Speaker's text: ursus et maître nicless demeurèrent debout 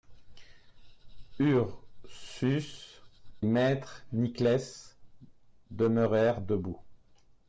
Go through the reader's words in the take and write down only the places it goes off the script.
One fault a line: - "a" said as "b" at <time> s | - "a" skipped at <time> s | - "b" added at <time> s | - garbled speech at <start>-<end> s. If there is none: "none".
- "et" skipped at 3.0 s